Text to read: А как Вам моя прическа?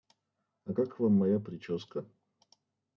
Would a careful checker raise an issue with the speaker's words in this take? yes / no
no